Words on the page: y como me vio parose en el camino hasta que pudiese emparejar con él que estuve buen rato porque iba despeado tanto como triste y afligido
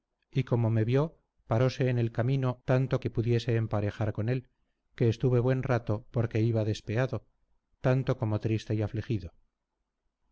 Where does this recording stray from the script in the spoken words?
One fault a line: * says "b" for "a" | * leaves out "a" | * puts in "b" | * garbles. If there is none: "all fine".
* says "tanto" for "hasta"